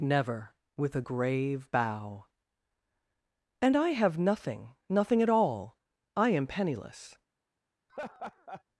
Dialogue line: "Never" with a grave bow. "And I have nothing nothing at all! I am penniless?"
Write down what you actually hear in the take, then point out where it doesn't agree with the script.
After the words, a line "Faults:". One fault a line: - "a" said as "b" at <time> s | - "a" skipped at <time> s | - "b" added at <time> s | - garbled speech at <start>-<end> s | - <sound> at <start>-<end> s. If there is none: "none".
"Never" with a grave bow. "And I have nothing nothing at all! I am penniless?"
Faults:
- laugh at 7.9-8.6 s